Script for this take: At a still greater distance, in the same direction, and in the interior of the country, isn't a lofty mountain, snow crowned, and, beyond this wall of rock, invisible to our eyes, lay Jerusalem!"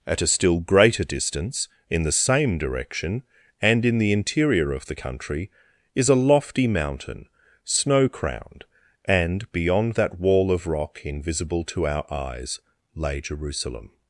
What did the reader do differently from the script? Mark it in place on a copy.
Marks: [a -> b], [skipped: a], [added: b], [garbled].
At a still greater distance, in the same direction, and in the interior of the country, [isn't -> is] a lofty mountain, snow crowned, and, beyond [this -> that] wall of rock, invisible to our eyes, lay Jerusalem!"